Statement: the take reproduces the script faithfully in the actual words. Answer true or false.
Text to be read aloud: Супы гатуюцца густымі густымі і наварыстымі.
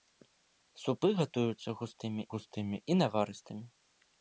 true